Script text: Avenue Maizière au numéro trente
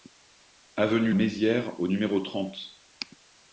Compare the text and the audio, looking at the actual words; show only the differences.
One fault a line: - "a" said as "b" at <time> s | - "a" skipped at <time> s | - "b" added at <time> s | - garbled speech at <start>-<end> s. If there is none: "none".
none